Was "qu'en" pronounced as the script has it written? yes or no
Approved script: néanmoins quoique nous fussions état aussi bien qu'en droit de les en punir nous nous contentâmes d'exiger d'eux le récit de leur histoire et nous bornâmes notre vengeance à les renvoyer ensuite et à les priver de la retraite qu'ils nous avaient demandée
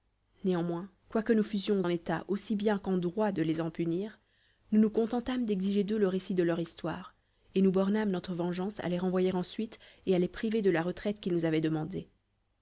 yes